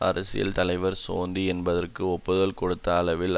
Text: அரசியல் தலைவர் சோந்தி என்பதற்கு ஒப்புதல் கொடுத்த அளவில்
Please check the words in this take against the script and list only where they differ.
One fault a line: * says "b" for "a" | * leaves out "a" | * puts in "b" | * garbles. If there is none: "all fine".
all fine